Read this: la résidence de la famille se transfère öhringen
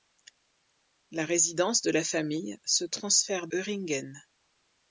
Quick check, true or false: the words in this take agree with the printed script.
true